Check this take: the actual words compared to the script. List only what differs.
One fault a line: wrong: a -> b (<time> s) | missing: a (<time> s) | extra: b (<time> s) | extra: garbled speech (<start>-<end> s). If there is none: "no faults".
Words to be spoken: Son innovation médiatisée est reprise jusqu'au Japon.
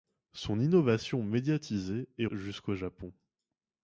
missing: reprise (2.2 s)